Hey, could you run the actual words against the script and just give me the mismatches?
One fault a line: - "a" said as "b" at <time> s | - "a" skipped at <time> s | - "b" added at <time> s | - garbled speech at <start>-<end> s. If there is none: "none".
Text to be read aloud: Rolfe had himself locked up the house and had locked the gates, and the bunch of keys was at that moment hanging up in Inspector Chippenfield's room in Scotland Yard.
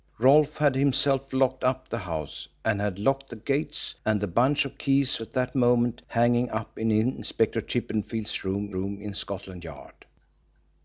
- "was" skipped at 5.2 s
- "room" added at 8.7 s